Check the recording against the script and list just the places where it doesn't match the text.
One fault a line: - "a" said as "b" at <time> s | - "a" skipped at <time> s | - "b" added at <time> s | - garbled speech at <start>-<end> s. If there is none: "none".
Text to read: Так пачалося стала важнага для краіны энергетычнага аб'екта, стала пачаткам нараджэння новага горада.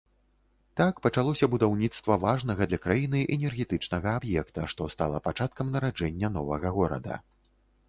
- "стала" said as "будаўніцтва" at 1.6 s
- "што" added at 4.7 s